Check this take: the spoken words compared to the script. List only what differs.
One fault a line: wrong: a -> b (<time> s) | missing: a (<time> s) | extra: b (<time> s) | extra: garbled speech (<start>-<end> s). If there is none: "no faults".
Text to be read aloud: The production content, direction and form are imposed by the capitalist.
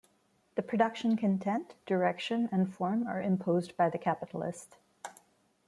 no faults